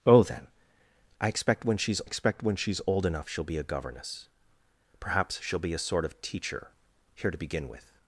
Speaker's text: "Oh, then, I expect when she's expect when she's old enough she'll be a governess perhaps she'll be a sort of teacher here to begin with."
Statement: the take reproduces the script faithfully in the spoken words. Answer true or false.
true